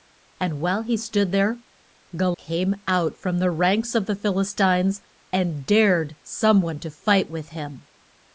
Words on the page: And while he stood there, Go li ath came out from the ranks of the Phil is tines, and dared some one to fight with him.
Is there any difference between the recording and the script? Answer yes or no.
yes